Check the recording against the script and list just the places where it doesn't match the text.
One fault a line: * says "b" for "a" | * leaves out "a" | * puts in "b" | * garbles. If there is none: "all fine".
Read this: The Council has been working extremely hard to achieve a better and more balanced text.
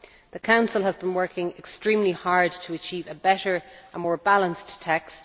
all fine